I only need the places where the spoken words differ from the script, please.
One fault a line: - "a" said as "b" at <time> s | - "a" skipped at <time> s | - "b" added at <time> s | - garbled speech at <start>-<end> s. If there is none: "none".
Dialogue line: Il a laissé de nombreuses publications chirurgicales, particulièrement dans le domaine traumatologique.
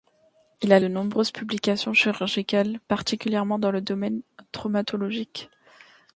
- "laissé" skipped at 0.8 s